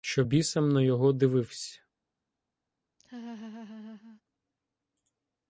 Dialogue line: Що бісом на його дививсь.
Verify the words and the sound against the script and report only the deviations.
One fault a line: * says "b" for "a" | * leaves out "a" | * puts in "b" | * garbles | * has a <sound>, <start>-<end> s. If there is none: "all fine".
* has a laugh, 3.0-4.2 s